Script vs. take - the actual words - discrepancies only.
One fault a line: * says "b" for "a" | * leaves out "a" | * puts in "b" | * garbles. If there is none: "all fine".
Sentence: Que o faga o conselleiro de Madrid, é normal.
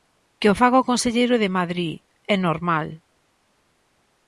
all fine